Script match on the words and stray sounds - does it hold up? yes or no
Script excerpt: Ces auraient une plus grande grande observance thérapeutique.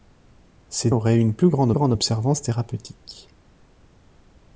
yes